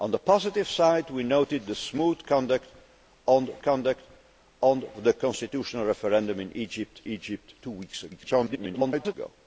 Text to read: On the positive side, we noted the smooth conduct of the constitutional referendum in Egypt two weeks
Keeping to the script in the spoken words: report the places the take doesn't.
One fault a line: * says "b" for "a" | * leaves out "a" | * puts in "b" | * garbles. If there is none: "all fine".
* puts in "conduct of"
* puts in "Egypt"
* garbles